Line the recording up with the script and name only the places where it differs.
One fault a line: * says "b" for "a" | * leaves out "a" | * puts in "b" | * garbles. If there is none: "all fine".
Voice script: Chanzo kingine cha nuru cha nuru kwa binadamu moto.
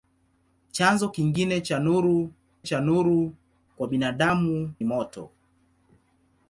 all fine